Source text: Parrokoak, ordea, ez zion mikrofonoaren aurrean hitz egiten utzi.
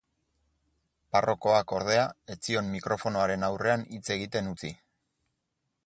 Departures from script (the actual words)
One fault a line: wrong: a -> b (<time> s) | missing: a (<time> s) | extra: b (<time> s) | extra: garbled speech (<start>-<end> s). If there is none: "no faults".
no faults